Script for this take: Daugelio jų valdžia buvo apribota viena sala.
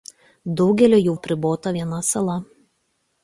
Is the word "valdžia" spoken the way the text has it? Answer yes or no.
no